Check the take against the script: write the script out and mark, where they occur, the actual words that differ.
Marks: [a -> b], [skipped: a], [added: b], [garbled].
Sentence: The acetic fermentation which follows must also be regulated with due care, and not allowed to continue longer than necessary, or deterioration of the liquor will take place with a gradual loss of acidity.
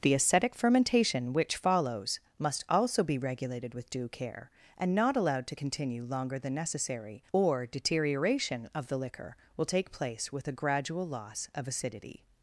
The acetic fermentation which follows must also be regulated with due care, and not allowed to continue longer than necessary, or deterioration of the liquor will take place with a gradual loss of acidity.